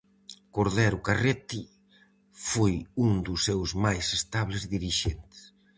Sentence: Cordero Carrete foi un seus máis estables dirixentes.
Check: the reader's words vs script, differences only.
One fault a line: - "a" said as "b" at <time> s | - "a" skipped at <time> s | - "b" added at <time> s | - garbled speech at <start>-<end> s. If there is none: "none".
- "dos" added at 3.3 s